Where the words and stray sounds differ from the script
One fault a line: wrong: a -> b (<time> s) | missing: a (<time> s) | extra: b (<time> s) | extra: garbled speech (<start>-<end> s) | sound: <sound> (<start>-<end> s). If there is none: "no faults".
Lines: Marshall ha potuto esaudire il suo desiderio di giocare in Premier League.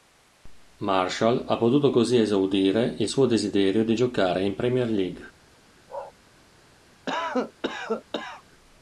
extra: così (1.9 s)
sound: bark (5.9-6.1 s)
sound: cough (7.1-8.4 s)